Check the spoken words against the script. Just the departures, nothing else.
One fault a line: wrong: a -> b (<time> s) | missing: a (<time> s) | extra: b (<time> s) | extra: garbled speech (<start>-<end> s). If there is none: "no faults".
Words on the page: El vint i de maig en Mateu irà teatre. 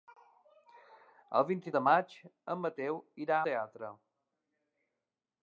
no faults